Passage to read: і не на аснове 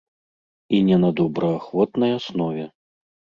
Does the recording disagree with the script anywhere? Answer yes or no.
yes